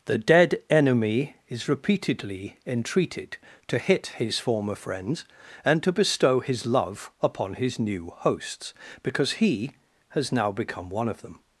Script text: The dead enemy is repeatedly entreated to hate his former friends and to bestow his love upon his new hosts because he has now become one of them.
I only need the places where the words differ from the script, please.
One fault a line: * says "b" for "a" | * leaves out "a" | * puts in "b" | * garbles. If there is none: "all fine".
* says "hit" for "hate"